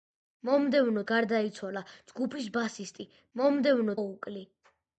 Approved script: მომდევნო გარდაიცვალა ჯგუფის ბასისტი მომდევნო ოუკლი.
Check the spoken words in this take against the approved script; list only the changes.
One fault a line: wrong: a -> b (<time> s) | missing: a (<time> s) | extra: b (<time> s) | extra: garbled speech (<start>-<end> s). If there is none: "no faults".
no faults